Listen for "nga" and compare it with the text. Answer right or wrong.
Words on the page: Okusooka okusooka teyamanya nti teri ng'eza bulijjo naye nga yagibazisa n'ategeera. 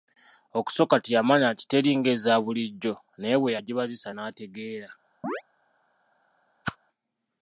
wrong